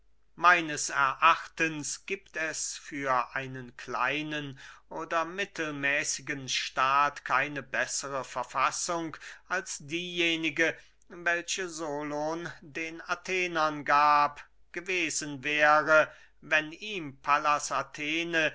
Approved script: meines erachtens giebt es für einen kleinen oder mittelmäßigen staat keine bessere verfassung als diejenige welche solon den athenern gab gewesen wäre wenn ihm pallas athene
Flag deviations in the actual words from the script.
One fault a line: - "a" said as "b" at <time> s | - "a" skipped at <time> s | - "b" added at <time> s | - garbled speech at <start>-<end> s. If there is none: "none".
none